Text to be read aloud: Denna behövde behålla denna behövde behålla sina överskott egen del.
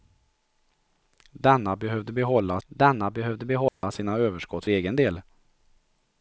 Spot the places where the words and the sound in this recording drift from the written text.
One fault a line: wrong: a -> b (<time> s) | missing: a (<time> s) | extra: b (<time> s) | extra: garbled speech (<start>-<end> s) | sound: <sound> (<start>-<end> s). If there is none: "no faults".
sound: dropout (3.7-3.8 s)